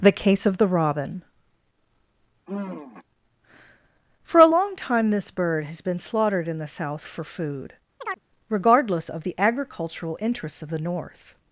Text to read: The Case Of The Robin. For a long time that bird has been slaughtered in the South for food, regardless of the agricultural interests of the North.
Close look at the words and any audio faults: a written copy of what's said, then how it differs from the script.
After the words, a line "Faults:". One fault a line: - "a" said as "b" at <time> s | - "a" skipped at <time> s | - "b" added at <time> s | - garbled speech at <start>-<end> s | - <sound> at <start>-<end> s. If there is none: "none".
The Case Of The Robin. For a long time this bird has been slaughtered in the South for food, regardless of the agricultural interests of the North.
Faults:
- sigh at 2.5-3.0 s
- "that" said as "this" at 5.1 s
- chirp at 8.0-8.2 s